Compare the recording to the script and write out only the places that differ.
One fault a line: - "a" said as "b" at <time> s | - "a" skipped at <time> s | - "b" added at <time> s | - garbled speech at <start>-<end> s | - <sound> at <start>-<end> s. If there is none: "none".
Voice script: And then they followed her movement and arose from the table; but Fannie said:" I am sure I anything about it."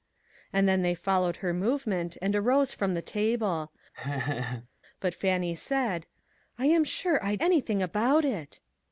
- laugh at 3.9-4.7 s